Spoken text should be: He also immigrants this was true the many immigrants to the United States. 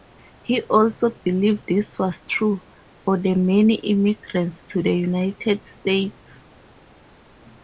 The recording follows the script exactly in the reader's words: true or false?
false